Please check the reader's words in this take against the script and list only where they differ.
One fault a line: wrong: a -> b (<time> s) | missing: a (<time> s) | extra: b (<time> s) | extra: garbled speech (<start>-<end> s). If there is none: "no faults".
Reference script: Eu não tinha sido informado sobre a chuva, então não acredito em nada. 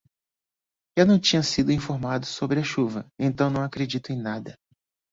no faults